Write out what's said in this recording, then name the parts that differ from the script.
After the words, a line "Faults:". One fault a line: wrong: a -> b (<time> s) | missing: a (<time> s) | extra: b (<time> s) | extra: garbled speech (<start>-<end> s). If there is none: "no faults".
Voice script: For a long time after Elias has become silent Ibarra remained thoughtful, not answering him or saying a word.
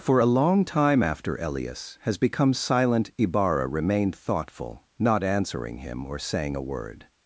For a long time after Elias has become silent Ibarra remained thoughtful, not answering him or saying a word.
Faults:
no faults